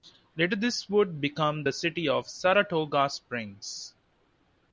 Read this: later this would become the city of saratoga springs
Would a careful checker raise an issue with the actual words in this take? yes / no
no